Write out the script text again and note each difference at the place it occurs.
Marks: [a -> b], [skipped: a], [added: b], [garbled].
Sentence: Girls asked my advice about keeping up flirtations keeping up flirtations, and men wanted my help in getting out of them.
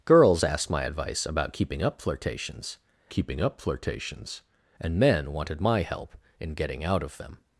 Girls asked my advice about keeping up flirtations keeping up flirtations, and men wanted my help in getting out of them.